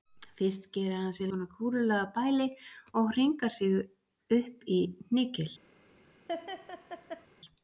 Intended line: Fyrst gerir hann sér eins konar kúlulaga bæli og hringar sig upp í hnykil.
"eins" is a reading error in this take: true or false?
true